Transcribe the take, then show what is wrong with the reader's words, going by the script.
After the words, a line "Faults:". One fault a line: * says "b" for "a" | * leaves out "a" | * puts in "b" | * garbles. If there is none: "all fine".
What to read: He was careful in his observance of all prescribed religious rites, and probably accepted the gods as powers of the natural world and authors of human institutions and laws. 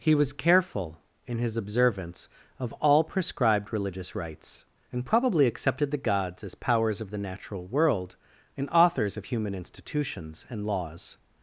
He was careful in his observance of all prescribed religious rites, and probably accepted the gods as powers of the natural world and authors of human institutions and laws.
Faults:
all fine